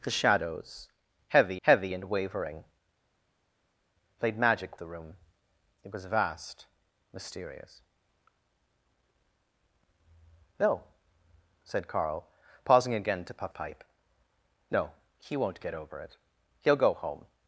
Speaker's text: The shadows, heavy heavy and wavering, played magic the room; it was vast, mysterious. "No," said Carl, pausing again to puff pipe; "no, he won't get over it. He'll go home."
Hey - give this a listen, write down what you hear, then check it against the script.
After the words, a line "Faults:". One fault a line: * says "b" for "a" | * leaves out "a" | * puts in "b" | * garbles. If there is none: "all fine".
The shadows, heavy heavy and wavering, played magic the room; it was vast, mysterious. "No," said Carl, pausing again to puff pipe; "no, he won't get over it. He'll go home."
Faults:
all fine